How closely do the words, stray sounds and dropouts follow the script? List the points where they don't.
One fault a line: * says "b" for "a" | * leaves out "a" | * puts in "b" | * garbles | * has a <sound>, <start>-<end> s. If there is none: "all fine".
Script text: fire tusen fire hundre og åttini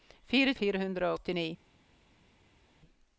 * leaves out "tusen"
* leaves out "og"